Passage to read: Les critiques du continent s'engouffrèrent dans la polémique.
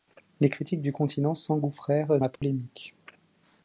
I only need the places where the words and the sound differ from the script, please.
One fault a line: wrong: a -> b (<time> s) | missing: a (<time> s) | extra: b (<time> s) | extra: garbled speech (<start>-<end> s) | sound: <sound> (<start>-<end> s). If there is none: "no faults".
missing: dans (2.2 s)
sound: dropout (2.4-2.4 s)